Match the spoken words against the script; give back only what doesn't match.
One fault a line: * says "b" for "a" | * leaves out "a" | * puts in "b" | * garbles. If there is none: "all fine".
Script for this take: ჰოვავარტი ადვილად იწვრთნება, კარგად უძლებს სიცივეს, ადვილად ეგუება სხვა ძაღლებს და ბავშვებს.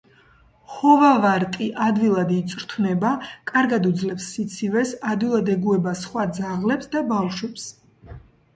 all fine